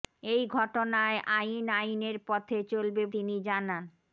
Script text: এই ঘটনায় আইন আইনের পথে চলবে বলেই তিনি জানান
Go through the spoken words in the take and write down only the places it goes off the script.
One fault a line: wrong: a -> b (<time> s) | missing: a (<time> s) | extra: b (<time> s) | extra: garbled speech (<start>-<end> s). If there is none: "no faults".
missing: বলেই (3.0 s)